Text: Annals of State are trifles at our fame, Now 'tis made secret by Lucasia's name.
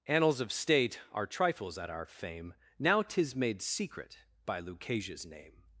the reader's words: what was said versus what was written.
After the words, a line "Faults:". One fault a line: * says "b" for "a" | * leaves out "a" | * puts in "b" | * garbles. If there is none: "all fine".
Annals of State are trifles at our fame, Now 'tis made secret by Lucasia's name.
Faults:
all fine